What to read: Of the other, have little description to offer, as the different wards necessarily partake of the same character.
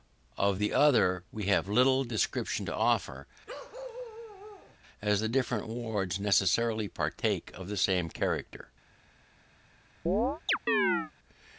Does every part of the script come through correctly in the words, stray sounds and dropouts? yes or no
no